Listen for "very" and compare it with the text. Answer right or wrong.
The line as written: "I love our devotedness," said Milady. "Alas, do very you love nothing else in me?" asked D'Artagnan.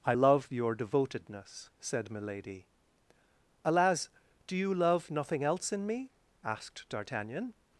wrong